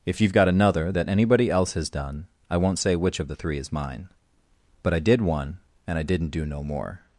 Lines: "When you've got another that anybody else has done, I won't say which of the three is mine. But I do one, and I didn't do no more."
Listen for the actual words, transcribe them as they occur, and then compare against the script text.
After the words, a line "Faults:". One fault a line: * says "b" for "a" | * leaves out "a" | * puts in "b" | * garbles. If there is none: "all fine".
"If you've got another that anybody else has done, I won't say which of the three is mine. But I did one, and I didn't do no more."
Faults:
* says "If" for "When"
* says "did" for "do"